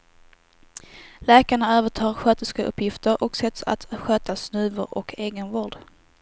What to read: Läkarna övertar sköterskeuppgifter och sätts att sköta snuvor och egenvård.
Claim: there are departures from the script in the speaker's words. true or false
false